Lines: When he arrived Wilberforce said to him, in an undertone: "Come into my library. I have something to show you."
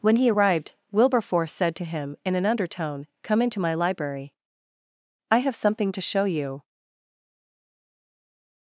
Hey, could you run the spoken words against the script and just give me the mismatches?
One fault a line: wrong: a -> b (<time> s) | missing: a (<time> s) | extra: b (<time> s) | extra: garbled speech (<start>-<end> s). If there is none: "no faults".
no faults